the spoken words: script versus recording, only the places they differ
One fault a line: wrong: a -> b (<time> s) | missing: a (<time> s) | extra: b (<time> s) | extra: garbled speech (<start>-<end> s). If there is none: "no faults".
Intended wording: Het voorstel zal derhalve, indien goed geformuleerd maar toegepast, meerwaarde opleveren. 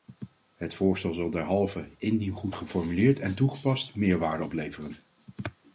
wrong: maar -> en (3.2 s)